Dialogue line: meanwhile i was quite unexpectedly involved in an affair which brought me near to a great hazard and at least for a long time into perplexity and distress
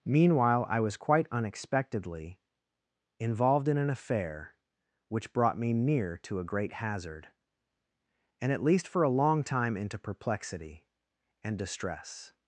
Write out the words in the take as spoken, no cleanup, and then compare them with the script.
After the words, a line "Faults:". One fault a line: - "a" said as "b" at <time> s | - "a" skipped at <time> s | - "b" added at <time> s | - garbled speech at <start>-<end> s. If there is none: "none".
meanwhile i was quite unexpectedly involved in an affair which brought me near to a great hazard and at least for a long time into perplexity and distress
Faults:
none